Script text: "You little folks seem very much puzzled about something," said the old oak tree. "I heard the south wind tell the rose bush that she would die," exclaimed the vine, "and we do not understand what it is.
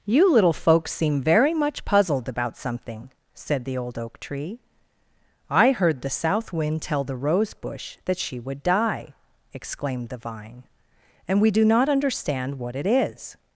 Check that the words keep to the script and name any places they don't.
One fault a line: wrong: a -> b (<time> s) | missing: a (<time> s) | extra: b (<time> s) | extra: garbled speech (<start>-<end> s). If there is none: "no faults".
no faults